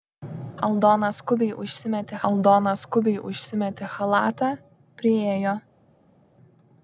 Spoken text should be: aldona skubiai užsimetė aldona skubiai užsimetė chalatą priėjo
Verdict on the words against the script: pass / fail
pass